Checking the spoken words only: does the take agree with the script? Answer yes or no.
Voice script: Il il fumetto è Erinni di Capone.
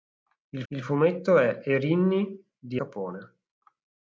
yes